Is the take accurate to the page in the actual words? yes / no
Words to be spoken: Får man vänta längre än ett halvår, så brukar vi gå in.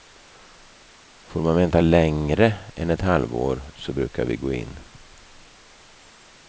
yes